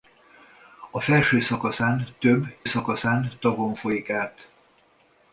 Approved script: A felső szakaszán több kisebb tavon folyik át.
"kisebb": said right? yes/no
no